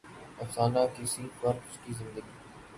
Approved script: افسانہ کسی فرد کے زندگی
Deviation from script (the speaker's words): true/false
false